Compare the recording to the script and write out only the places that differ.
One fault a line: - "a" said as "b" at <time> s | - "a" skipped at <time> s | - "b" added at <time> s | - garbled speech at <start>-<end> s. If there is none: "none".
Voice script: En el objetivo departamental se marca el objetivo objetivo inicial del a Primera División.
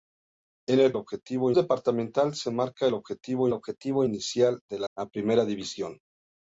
none